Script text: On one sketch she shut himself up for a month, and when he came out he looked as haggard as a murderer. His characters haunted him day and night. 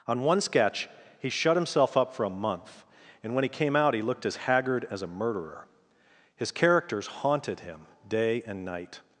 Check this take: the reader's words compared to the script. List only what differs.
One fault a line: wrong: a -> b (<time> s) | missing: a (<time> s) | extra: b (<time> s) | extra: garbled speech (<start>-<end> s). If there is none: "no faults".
wrong: she -> he (1.2 s)